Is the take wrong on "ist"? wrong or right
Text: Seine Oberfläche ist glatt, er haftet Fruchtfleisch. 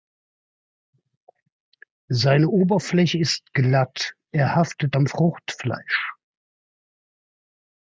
right